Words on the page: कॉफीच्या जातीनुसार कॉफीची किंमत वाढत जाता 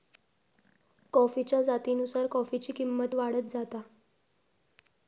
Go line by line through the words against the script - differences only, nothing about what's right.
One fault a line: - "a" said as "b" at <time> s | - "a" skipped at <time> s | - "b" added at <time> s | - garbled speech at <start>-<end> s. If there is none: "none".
none